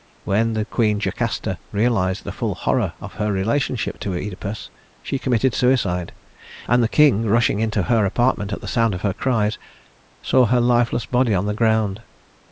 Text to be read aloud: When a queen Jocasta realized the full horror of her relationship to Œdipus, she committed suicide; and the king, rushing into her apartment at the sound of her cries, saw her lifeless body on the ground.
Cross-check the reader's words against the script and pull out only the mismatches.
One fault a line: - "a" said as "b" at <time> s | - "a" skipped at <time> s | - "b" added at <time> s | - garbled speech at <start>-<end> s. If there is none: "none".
- "a" said as "the" at 0.5 s